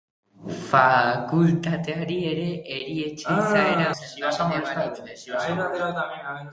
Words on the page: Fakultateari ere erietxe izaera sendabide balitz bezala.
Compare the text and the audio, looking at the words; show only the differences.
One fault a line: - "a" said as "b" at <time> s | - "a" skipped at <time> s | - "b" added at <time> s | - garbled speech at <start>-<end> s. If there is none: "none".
none